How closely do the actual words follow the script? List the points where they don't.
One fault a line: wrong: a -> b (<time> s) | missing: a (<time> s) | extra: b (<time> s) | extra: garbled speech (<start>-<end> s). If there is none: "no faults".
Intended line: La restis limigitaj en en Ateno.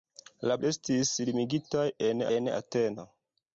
no faults